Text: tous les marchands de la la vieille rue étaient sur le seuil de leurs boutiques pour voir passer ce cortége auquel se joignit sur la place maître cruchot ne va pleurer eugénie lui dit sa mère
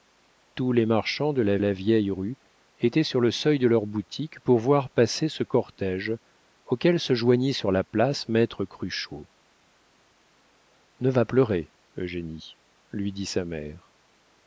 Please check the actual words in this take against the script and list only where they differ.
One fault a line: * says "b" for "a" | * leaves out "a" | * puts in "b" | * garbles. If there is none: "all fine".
all fine